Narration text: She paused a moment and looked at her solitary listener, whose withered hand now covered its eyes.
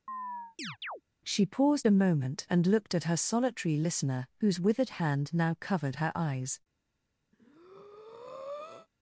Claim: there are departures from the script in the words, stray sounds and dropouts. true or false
true